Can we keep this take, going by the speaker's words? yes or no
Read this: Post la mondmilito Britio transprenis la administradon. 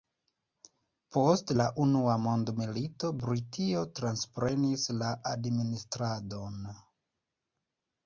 no